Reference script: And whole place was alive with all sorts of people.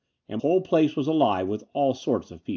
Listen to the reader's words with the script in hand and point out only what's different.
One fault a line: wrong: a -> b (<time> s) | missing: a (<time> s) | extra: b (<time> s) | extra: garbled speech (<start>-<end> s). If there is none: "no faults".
no faults